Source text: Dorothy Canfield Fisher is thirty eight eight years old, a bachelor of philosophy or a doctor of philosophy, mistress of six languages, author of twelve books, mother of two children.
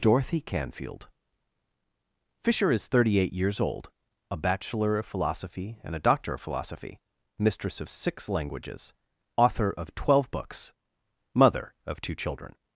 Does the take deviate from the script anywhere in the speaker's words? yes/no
yes